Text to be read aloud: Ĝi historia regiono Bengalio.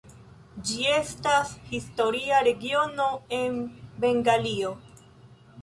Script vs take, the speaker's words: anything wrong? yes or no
yes